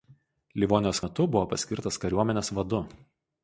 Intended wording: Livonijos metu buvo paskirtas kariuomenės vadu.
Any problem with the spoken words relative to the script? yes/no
no